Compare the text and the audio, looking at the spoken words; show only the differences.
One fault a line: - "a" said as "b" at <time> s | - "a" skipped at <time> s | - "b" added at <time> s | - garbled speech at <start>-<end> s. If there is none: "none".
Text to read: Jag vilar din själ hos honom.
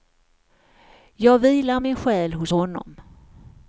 - "din" said as "min" at 1.8 s